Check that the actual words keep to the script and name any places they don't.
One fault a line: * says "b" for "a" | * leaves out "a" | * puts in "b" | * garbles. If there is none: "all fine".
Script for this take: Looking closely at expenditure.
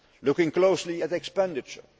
all fine